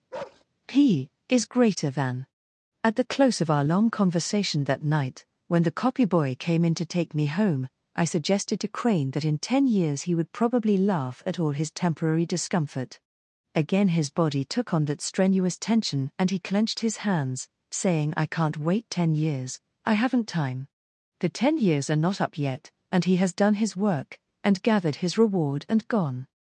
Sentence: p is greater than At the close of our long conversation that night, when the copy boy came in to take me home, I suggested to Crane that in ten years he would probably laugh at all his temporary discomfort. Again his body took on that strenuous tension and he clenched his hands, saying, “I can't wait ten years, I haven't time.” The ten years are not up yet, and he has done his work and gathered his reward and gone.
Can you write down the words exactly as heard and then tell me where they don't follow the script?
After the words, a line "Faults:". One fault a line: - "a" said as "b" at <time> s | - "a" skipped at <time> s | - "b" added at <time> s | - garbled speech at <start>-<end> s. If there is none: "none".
p is greater than At the close of our long conversation that night, when the copy boy came in to take me home, I suggested to Crane that in ten years he would probably laugh at all his temporary discomfort. Again his body took on that strenuous tension and he clenched his hands, saying, “I can't wait ten years, I haven't time.” The ten years are not up yet, and he has done his work and gathered his reward and gone.
Faults:
none